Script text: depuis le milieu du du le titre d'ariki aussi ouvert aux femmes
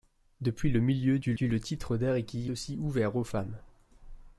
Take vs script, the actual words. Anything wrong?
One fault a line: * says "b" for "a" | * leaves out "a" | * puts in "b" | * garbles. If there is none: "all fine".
all fine